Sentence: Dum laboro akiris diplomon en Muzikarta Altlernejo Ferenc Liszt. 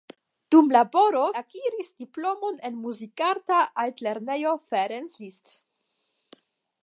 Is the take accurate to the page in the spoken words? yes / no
yes